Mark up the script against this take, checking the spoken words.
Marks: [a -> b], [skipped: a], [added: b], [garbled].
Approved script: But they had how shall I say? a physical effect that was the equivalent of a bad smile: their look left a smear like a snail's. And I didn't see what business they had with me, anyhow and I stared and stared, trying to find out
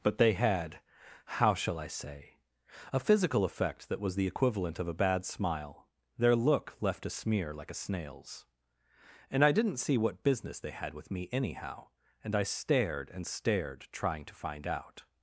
But they had how shall I say? a physical effect that was the equivalent of a bad smile: their look left a smear like a snail's. And I didn't see what business they had with me, anyhow and I stared and stared, trying to find out